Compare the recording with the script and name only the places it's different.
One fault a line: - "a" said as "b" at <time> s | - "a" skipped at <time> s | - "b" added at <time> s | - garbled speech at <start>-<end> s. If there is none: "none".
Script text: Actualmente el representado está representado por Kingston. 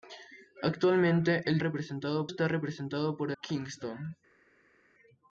none